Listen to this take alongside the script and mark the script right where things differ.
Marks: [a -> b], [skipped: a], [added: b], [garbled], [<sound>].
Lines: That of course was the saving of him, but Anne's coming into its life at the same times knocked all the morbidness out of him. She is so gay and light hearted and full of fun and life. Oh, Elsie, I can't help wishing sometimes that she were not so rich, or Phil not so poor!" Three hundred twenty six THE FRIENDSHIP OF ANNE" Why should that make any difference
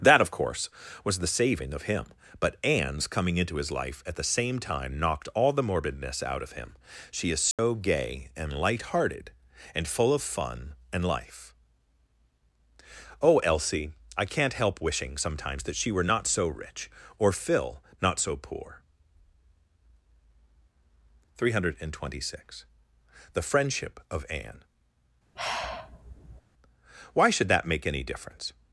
That of course was the saving of him, but Anne's coming into [its -> his] life at the same [times -> time] knocked all the morbidness out of him. She is so [dropout] gay and light hearted and full of fun and life. Oh, Elsie, I can't help wishing sometimes that she were not so rich, or Phil not so poor!" Three hundred twenty six THE FRIENDSHIP OF ANNE" [sigh] Why should that make any difference